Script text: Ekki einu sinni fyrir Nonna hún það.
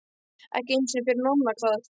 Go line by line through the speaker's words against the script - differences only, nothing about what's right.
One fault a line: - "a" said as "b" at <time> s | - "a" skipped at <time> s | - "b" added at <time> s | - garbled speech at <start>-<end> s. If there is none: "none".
none